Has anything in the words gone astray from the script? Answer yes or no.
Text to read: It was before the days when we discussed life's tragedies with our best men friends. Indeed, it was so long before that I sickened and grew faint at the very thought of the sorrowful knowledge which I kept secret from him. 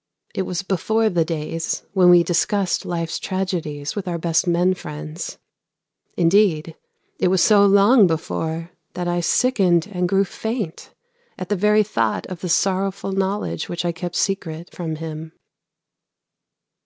no